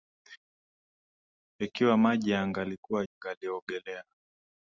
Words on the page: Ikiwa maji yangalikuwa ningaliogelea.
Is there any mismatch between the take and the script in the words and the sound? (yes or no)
no